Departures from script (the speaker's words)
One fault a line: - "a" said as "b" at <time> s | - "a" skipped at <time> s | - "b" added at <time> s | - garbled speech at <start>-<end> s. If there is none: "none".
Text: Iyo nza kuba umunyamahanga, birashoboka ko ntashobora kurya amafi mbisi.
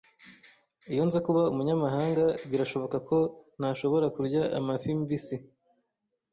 none